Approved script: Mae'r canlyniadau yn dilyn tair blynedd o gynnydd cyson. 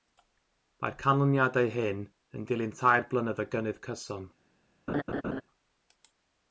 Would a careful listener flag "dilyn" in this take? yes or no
no